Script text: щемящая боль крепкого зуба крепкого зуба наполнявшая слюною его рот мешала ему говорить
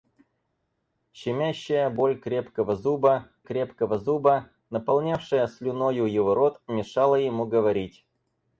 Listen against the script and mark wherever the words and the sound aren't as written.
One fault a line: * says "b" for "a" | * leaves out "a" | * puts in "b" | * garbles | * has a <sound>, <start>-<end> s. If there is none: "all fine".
all fine